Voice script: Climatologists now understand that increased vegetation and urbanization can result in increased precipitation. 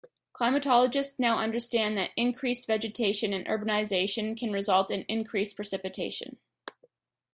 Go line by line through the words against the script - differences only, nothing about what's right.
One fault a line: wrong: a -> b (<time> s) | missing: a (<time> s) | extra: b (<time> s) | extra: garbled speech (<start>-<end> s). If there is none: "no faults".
no faults